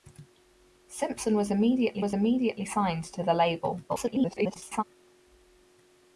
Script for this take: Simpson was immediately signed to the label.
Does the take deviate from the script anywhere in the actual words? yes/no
yes